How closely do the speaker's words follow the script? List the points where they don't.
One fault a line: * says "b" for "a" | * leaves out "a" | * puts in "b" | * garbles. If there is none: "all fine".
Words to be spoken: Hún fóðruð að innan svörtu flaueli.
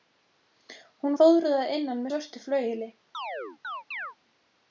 all fine